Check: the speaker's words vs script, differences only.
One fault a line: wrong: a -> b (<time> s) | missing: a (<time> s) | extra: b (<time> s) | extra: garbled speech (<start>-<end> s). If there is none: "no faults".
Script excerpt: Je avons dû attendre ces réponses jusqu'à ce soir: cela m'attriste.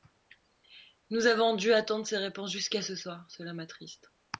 wrong: Je -> Nous (1.1 s)